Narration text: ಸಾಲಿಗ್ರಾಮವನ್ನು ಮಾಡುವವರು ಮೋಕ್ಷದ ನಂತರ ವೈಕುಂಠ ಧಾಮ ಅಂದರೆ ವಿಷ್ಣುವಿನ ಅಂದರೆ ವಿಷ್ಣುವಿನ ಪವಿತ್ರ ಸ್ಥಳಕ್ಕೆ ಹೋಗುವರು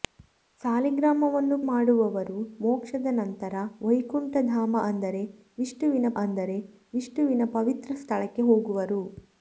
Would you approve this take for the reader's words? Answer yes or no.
yes